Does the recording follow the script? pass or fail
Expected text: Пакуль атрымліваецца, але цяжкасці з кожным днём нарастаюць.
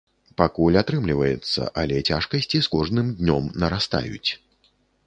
pass